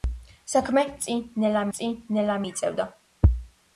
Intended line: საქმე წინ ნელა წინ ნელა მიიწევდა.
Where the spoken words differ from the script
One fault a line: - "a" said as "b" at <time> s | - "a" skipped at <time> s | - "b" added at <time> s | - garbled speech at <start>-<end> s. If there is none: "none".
none